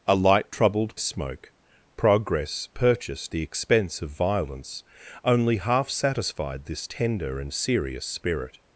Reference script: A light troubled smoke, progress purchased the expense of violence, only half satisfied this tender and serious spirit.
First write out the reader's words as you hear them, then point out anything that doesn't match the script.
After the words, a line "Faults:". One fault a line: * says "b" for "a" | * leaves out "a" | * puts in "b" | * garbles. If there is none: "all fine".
A light troubled smoke, progress purchased the expense of violence, only half satisfied this tender and serious spirit.
Faults:
all fine